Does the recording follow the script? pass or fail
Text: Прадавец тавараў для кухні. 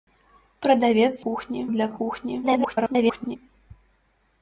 fail